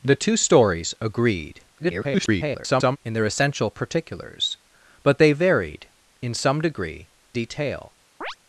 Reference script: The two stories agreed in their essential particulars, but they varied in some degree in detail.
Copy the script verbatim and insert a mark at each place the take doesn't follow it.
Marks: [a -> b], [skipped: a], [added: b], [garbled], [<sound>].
The two stories agreed [garbled] in their essential particulars, but they varied in some degree [skipped: in] detail. [chirp]